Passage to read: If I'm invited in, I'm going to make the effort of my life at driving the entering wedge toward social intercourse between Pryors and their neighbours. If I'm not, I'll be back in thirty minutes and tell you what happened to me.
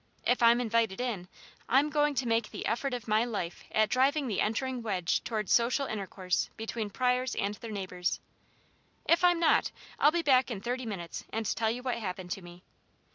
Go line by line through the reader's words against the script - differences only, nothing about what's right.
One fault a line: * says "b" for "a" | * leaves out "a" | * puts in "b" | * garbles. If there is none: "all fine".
all fine